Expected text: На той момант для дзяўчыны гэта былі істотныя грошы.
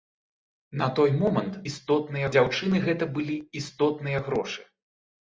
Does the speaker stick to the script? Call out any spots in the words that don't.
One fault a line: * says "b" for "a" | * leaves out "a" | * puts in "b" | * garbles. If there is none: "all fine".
* says "істотныя" for "для"